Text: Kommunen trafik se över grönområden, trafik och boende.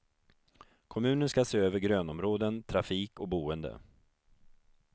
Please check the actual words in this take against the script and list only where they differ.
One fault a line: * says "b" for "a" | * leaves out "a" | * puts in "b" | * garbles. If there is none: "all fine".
* says "ska" for "trafik"